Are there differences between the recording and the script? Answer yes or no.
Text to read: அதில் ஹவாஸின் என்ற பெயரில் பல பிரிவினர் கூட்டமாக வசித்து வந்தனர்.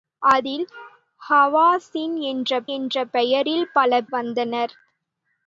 yes